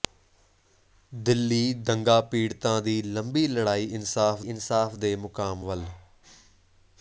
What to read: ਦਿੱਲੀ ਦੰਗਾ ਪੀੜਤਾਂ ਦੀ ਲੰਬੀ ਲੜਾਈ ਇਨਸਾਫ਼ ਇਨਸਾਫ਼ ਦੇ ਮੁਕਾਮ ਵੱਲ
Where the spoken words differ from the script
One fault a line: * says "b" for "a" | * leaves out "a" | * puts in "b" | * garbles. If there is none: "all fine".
all fine